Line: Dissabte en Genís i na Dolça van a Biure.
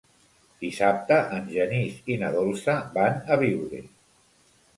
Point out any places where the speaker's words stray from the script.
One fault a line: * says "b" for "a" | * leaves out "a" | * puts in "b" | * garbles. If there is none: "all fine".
all fine